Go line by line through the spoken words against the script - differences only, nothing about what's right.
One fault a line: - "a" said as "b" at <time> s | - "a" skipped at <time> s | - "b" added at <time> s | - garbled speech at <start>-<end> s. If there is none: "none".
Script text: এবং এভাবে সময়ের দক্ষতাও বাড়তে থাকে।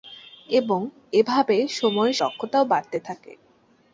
none